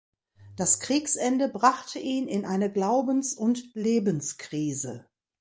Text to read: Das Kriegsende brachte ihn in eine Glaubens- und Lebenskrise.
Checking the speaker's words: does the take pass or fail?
pass